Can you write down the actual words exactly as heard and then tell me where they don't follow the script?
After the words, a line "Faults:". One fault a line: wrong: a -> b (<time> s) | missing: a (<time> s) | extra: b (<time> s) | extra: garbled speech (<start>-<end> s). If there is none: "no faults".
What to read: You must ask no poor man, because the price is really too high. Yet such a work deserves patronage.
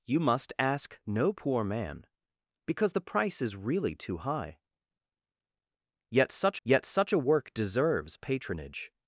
You must ask no poor man, because the price is really too high. Yet such yet such a work deserves patronage.
Faults:
extra: yet such (6.6 s)